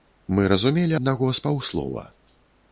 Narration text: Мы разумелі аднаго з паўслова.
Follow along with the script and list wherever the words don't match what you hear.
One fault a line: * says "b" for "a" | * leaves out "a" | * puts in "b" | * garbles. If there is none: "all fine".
all fine